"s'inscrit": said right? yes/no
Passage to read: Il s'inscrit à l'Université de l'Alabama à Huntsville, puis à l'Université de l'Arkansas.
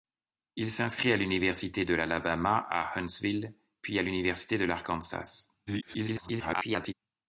yes